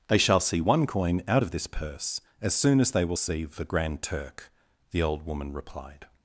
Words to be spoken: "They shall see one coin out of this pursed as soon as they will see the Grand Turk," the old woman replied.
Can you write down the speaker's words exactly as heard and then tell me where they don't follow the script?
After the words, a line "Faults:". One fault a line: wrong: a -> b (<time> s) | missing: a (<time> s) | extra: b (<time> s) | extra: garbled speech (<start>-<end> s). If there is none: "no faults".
"They shall see one coin out of this purse as soon as they will see the Grand Turk," the old woman replied.
Faults:
wrong: pursed -> purse (1.7 s)